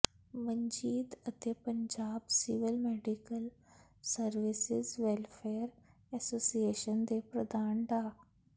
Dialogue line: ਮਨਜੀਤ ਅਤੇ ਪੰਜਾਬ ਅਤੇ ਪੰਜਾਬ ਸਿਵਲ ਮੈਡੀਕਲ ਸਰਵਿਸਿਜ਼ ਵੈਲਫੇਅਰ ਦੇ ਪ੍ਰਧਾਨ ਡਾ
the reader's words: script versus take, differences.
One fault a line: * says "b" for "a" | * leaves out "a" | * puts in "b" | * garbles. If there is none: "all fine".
* leaves out "ਅਤੇ ਪੰਜਾਬ"
* puts in "ਐਸੋਸੀਏਸ਼ਨ"